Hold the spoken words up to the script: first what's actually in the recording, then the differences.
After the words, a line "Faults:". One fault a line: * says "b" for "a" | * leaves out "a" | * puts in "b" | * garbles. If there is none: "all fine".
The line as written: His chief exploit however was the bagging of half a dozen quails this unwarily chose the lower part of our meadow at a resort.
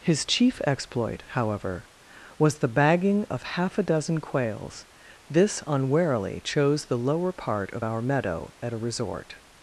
His chief exploit however was the bagging of half a dozen quails this unwarily chose the lower part of our meadow at a resort.
Faults:
all fine